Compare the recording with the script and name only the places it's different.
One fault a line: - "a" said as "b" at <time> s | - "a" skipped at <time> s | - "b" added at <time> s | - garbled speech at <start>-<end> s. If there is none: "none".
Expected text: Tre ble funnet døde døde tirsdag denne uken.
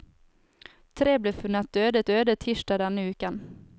none